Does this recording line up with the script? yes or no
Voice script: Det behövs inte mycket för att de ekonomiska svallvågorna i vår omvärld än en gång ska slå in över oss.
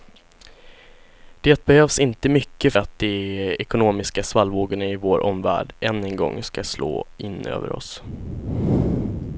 no